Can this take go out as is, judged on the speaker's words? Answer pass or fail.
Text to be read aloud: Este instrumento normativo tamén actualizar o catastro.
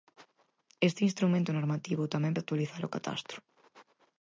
pass